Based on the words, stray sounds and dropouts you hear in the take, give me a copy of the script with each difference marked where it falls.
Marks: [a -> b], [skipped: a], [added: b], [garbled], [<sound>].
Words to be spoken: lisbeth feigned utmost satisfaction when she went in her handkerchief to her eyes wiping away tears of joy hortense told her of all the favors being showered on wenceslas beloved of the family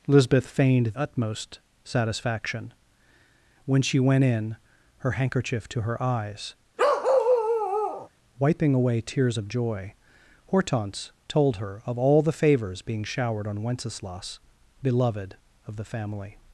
lisbeth feigned utmost satisfaction when she went in her handkerchief to her eyes [bark] wiping away tears of joy hortense told her of all the favors being showered on wenceslas beloved of the family